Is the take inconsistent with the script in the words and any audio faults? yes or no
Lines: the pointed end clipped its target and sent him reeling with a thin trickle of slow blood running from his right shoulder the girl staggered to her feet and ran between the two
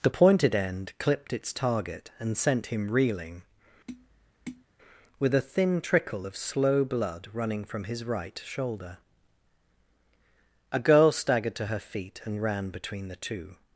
yes